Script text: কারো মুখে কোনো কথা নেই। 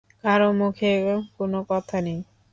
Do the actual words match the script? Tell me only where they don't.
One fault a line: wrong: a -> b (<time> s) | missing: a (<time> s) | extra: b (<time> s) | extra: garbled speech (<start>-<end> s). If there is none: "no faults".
no faults